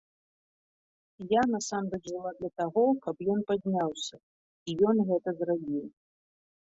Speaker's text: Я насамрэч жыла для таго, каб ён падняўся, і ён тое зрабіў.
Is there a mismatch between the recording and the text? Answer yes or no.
yes